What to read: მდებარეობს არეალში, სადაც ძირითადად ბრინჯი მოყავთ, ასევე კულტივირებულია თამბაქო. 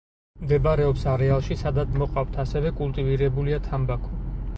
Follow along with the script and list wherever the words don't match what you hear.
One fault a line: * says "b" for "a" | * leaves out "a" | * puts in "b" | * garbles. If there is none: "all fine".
* leaves out "ძირითადად ბრინჯი"